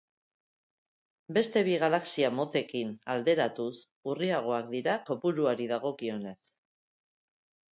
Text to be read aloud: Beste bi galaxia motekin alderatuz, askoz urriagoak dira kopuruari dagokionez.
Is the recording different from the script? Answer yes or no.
yes